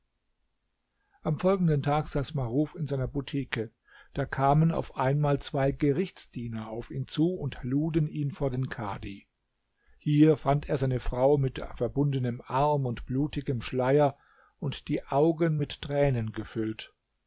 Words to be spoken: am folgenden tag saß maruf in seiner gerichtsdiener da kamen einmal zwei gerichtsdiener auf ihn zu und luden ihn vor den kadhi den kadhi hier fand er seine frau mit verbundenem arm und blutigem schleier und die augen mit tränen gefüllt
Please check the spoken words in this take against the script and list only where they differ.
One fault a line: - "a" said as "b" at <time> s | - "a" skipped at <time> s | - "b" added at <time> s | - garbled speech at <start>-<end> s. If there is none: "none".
- "gerichtsdiener" said as "butike" at 3.1 s
- "auf" added at 4.7 s
- "den kadhi" skipped at 9.3 s